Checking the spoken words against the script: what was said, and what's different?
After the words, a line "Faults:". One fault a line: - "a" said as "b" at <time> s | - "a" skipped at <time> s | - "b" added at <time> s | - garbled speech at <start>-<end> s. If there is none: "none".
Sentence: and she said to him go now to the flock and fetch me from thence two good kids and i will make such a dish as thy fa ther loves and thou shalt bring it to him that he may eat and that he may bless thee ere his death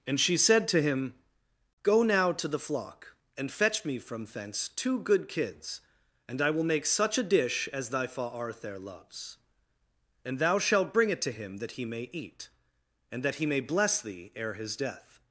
and she said to him go now to the flock and fetch me from thence two good kids and i will make such a dish as thy fa arthur loves and thou shalt bring it to him that he may eat and that he may bless thee ere his death
Faults:
- "ther" said as "arthur" at 8.2 s